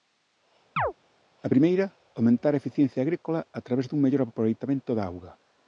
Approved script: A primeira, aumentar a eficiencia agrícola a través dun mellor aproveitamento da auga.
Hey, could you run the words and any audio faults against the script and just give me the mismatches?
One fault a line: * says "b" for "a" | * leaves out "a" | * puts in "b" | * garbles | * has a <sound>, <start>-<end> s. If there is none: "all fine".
* has a chirp, 0.8-0.9 s